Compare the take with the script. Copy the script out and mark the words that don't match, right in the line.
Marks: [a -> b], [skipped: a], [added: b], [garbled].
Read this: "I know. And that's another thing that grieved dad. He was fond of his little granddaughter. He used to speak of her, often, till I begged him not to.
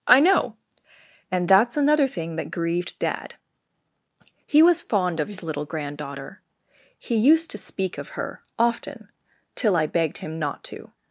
"I know. And that's another thing that grieved dad. He was fond of his little granddaughter. He used to speak of her, often, till I begged him not to.